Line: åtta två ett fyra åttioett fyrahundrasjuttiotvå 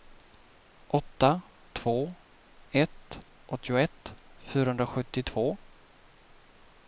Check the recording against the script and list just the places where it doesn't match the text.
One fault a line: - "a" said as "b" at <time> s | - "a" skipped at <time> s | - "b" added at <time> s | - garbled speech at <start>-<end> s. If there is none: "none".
- "fyra" skipped at 3.2 s